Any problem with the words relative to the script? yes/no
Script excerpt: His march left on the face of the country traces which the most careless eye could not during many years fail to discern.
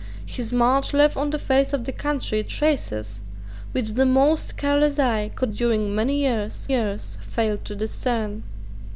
yes